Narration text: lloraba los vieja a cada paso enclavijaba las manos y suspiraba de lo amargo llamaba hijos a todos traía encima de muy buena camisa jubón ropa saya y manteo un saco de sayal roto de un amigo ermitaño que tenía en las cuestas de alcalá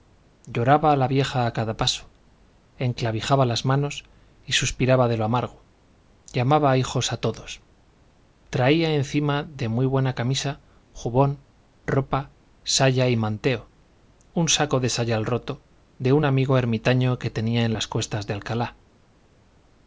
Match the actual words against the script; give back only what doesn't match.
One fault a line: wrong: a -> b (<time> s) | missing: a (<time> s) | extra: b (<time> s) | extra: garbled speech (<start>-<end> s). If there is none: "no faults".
wrong: los -> la (0.9 s)